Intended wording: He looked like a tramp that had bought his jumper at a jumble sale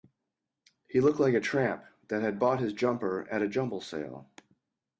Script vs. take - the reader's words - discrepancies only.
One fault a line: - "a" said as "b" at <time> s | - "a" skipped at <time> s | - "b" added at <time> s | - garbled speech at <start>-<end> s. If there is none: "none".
none